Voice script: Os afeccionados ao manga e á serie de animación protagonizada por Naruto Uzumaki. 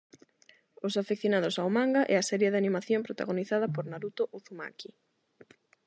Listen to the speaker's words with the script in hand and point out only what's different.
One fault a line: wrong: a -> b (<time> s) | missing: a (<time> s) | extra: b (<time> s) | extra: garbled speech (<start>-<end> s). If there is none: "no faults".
no faults